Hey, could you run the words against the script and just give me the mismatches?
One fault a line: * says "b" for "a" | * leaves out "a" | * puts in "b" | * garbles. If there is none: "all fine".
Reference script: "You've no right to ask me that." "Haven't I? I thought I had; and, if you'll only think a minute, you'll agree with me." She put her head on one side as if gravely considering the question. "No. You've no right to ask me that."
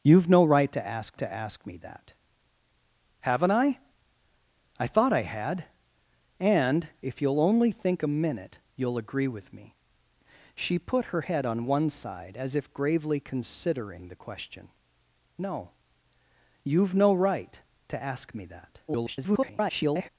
* puts in "to ask"
* garbles